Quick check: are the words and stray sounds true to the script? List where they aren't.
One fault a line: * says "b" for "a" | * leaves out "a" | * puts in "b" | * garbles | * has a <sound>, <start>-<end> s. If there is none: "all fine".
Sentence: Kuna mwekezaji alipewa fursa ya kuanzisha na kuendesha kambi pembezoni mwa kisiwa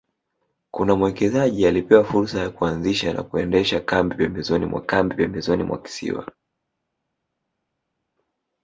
* puts in "kambi pembezoni mwa"